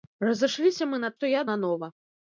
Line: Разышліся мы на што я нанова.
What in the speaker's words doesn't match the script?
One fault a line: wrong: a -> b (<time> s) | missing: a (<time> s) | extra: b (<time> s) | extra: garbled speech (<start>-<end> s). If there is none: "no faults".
no faults